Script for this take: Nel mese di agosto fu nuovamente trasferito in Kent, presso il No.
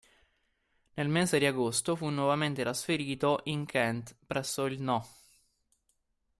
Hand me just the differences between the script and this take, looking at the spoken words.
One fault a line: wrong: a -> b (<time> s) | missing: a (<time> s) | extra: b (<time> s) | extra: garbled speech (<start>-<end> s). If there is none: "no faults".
no faults